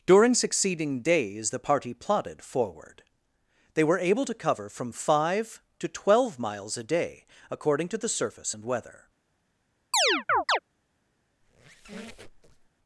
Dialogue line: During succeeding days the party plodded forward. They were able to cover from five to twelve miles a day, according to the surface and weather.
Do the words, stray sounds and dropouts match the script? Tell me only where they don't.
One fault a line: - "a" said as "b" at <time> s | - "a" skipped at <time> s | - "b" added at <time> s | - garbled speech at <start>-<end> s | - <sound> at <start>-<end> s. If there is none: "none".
- chirp at 9.9-10.6 s
- squeak at 11.4-12.7 s